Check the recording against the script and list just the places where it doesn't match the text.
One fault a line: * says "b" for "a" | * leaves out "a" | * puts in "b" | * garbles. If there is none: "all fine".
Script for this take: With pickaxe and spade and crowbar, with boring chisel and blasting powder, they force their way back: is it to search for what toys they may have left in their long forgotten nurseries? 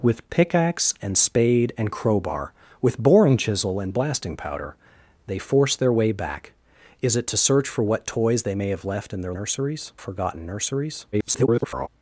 * says "nurseries" for "long"
* garbles